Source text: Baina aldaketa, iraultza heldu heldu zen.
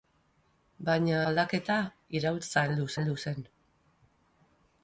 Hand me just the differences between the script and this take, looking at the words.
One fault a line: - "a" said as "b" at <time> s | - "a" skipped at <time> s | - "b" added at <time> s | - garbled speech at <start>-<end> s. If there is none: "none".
none